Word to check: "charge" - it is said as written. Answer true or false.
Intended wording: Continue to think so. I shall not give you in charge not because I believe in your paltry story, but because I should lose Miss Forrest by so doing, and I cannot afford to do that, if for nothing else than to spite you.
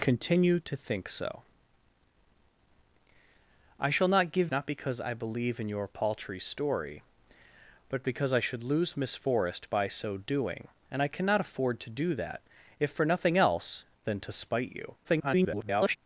false